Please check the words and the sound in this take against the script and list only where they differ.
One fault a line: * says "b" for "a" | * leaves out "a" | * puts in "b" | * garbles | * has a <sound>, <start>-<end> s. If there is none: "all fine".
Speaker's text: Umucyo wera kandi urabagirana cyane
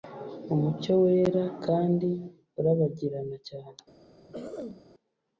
* has a throat clearing, 4.3-4.8 s